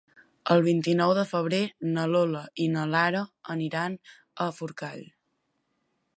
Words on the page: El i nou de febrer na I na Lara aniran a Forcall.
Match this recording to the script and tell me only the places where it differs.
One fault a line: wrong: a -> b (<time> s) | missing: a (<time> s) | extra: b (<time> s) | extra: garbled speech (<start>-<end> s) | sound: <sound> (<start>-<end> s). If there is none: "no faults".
extra: vint (0.7 s)
extra: Lola (2.1 s)